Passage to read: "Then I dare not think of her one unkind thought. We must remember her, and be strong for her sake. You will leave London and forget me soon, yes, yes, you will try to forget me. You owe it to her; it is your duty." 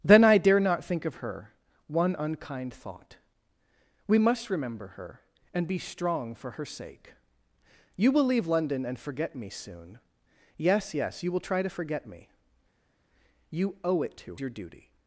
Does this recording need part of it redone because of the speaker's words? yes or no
yes